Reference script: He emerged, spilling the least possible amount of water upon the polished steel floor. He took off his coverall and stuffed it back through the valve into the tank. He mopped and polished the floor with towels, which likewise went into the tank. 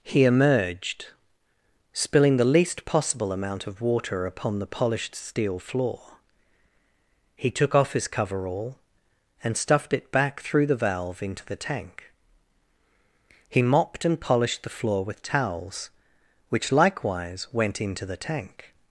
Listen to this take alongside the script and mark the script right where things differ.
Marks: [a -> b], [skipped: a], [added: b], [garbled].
He emerged, spilling the least possible amount of water upon the polished steel floor. He took off his coverall and stuffed it back through the valve into the tank. He mopped and polished the floor with towels, which likewise went into the tank.